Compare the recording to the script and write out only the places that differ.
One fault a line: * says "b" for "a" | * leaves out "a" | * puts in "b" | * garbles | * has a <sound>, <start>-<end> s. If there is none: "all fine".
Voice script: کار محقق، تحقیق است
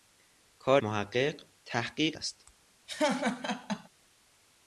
* has a laugh, 2.9-3.9 s